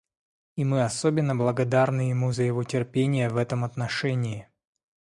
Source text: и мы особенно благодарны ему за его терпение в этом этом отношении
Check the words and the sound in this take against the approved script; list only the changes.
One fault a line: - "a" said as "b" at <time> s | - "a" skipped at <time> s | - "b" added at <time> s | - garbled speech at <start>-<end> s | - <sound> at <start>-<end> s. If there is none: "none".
- "этом" skipped at 3.6 s